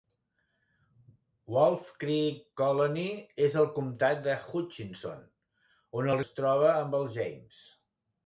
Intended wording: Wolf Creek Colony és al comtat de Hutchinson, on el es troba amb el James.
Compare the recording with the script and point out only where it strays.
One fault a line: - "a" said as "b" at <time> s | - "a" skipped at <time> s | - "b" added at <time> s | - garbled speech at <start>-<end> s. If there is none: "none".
none